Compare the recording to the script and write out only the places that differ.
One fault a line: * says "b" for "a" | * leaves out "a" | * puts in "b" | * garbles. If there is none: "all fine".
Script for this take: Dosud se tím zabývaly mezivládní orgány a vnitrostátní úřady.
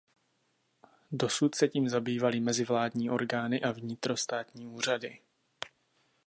all fine